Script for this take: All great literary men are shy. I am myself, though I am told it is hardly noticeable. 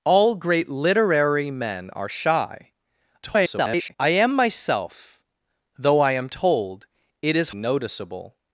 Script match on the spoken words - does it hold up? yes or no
no